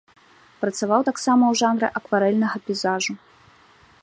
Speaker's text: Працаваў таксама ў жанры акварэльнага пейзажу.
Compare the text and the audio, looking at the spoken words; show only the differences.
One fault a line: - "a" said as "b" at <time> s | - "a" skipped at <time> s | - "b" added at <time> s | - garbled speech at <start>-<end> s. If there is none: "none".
none